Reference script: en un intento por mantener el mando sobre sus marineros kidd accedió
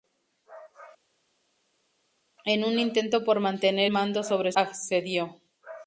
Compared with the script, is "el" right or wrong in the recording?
wrong